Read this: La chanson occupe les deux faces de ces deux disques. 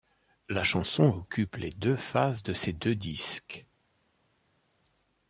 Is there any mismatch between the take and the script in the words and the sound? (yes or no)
no